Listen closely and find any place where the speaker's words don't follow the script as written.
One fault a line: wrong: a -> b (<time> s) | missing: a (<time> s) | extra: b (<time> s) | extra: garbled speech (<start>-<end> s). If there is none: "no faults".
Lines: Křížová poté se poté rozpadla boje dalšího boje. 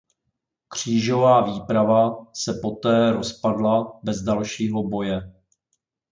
wrong: poté -> výprava (1.4 s)
wrong: boje -> bez (4.0 s)